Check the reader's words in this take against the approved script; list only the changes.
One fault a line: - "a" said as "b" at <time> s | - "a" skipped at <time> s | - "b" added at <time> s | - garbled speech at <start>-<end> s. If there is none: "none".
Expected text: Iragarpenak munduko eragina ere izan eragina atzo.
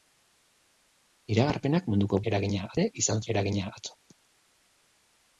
none